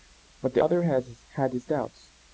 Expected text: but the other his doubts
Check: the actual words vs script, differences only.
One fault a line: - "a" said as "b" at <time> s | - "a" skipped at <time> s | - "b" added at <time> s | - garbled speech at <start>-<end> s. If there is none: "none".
- "had" added at 0.8 s